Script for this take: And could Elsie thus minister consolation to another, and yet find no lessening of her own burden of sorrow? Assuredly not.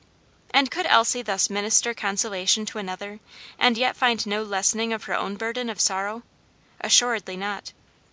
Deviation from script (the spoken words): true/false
false